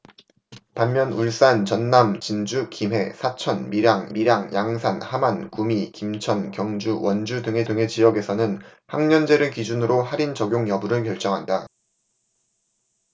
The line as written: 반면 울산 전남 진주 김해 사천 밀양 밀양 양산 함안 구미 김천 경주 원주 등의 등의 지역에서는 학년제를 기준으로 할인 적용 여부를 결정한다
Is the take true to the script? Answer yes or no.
yes